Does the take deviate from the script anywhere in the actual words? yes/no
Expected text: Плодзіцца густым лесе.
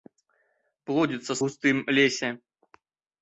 no